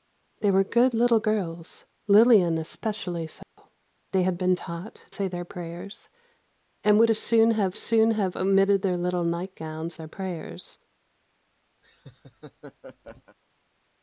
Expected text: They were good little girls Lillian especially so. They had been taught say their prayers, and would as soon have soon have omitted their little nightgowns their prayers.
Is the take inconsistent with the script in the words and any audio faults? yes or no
yes